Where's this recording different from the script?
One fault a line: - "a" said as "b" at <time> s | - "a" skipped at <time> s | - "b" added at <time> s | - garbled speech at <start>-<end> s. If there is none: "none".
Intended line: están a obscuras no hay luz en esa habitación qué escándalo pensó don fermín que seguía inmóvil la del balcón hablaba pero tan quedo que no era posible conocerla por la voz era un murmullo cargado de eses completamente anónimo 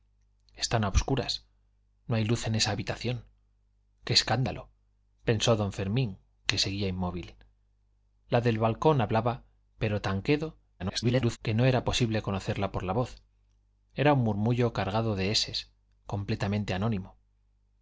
- garbled speech at 10.8-11.4 s